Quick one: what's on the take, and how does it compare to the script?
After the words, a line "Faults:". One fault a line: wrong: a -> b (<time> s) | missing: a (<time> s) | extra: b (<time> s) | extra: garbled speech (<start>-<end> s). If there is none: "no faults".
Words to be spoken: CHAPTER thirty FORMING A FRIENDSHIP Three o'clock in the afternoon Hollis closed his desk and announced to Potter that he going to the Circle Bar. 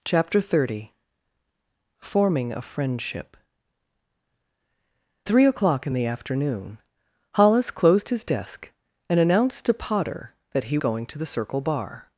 CHAPTER thirty FORMING A FRIENDSHIP Three o'clock in the afternoon Hollis closed his desk and announced to Potter that he going to the Circle Bar.
Faults:
no faults